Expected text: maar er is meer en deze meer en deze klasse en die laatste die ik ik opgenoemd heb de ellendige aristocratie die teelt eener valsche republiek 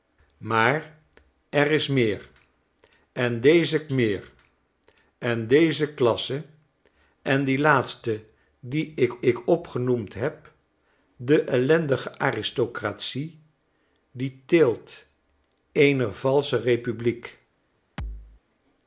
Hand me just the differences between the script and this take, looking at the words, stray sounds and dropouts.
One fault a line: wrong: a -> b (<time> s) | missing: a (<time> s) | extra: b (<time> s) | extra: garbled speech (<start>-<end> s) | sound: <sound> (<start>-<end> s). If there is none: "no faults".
sound: thud (18.0-18.4 s)